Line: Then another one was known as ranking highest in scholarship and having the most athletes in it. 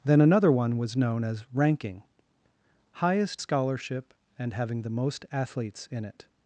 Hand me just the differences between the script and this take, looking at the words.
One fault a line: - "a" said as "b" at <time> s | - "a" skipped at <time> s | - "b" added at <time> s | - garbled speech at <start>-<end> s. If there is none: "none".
- "in" skipped at 3.4 s